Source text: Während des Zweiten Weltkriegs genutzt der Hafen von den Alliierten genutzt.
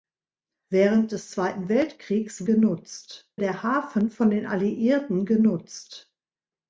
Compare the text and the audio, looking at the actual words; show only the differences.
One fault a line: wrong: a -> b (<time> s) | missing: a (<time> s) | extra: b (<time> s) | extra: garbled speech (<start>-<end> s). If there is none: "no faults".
no faults